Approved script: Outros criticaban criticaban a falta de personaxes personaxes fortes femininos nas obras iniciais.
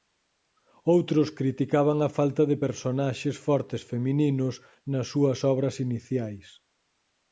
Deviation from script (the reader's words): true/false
true